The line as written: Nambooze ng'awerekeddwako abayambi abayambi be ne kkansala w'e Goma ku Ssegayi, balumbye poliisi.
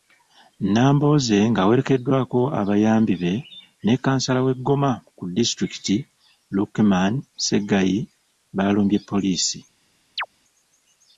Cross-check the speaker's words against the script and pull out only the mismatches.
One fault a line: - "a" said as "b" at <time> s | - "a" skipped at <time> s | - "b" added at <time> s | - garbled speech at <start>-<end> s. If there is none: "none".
- "abayambi" skipped at 3.1 s
- "disitulikiti Lukeman" added at 5.4 s